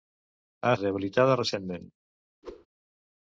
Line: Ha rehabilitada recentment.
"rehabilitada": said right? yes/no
yes